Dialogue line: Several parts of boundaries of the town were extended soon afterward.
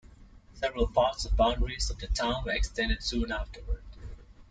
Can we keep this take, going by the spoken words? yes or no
yes